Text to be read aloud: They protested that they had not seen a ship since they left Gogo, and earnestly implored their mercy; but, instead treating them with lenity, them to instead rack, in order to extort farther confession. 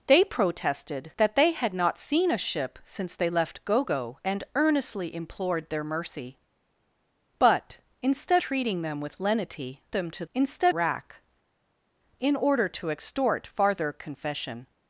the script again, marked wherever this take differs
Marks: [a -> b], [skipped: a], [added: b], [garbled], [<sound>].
They protested that they had not seen a ship since they left Gogo, and earnestly implored their mercy; but, instead treating them with lenity, them to instead rack, in order to extort farther confession.